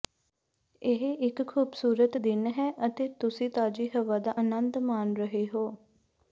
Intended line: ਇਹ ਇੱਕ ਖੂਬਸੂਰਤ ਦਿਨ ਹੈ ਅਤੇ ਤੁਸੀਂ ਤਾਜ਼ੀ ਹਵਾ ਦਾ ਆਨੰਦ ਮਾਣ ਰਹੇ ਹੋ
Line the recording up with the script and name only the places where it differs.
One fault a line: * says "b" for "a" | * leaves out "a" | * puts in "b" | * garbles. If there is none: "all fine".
all fine